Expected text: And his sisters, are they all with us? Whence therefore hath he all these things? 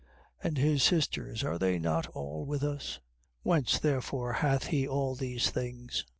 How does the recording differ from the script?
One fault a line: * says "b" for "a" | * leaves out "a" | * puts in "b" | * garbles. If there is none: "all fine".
* puts in "not"